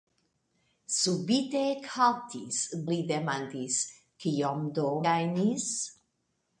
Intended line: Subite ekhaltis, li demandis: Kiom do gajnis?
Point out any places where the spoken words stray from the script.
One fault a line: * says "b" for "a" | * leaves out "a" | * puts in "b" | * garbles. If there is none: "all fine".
all fine